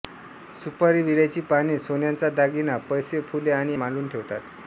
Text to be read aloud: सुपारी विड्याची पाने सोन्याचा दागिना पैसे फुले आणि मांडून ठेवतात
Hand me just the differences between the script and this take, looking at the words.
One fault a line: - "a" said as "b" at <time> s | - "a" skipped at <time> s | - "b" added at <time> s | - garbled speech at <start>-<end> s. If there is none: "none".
none